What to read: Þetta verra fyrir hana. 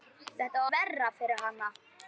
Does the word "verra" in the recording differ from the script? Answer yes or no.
no